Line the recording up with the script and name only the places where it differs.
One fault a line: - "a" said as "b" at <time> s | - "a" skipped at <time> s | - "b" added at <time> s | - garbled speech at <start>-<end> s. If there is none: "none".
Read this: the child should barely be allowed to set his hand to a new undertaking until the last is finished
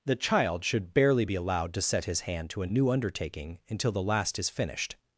none